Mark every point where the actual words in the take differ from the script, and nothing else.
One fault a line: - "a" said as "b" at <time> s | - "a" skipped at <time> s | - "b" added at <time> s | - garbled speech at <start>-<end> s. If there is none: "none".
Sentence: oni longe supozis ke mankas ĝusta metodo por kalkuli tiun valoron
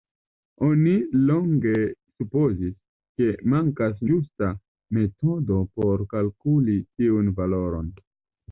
none